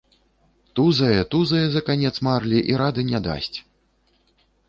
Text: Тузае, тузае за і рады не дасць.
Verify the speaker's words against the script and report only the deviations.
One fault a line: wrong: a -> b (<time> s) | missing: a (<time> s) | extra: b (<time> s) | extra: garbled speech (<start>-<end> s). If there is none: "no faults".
extra: канец марлі (1.9 s)